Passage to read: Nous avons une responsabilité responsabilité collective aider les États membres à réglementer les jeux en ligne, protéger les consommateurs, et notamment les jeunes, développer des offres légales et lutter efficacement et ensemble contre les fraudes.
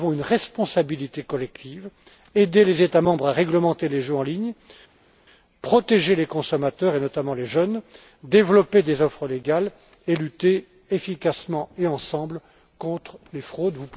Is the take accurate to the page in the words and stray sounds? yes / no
no